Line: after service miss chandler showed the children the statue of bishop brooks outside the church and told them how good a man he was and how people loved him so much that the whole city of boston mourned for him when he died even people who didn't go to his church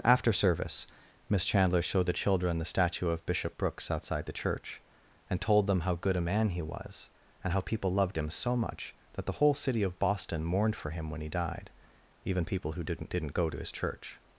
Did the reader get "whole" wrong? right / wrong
right